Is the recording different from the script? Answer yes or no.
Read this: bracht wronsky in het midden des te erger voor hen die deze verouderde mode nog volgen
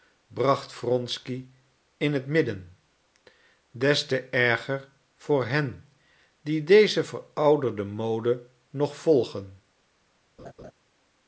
no